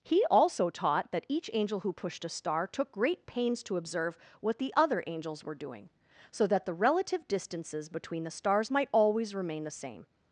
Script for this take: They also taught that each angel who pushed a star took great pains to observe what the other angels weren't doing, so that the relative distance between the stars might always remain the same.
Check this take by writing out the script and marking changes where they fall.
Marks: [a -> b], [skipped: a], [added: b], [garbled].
[They -> He] also taught that each angel who pushed a star took great pains to observe what the other angels [weren't -> were] doing, so that the relative [distance -> distances] between the stars might always remain the same.